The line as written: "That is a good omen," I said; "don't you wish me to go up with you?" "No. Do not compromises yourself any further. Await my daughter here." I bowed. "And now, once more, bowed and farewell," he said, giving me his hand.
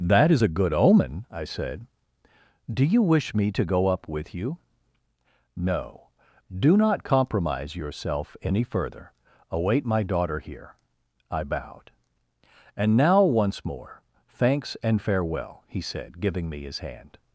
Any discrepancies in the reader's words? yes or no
yes